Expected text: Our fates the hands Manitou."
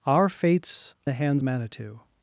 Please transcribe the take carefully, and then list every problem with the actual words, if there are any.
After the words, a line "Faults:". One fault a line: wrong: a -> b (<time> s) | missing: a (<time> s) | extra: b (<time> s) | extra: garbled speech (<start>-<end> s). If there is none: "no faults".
Our fates the hands Manitou."
Faults:
no faults